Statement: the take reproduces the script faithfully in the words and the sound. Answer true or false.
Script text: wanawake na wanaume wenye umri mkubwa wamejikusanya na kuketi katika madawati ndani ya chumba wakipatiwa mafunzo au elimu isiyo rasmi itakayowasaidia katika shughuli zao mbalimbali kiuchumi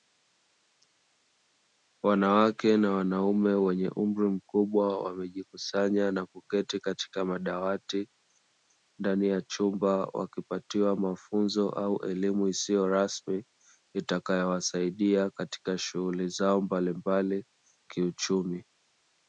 true